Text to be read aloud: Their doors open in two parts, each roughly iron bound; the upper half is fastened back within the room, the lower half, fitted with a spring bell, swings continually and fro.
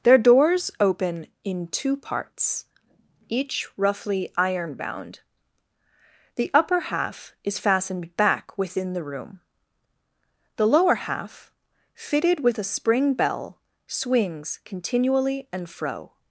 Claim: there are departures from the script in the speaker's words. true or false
false